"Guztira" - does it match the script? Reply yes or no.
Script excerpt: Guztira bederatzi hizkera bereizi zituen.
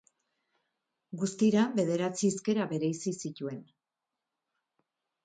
yes